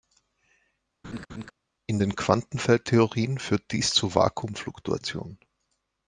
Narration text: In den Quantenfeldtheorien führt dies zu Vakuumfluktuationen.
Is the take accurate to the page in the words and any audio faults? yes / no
no